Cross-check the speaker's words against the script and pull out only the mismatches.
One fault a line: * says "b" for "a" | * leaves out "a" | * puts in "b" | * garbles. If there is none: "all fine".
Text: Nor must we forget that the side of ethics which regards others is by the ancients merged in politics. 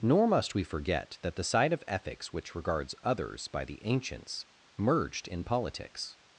* leaves out "is"